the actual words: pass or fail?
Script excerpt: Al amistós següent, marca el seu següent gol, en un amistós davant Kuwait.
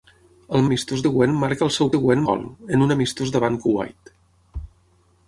pass